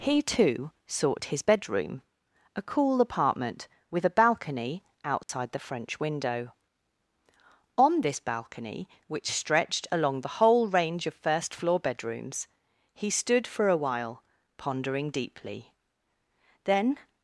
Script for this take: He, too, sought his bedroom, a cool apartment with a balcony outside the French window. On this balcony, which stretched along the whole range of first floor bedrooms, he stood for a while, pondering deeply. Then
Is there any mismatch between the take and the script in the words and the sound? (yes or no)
yes